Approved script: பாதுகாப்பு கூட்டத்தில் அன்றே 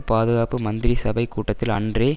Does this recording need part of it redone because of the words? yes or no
yes